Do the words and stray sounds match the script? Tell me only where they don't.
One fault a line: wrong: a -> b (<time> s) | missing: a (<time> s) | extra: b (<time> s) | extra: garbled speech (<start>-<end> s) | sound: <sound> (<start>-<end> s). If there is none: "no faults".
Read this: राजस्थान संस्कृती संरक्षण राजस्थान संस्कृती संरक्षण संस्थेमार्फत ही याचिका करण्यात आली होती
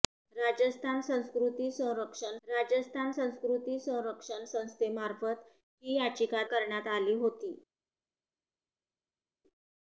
no faults